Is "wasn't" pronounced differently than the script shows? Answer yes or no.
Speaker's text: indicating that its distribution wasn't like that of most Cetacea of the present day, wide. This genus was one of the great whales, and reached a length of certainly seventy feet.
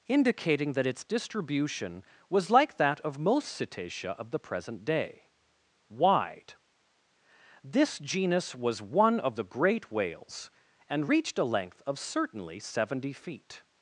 yes